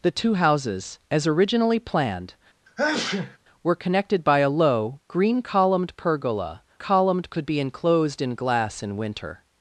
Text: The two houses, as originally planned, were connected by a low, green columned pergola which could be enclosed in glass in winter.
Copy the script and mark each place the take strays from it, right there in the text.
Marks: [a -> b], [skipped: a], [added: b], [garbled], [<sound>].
The two houses, as originally planned, [sneeze] were connected by a low, green columned pergola [which -> columned] could be enclosed in glass in winter.